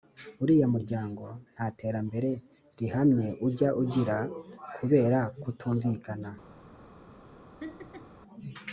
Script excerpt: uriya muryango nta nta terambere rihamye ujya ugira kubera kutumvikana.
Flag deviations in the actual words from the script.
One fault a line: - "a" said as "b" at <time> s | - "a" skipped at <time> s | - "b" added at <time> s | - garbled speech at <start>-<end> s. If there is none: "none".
- "nta" skipped at 1.7 s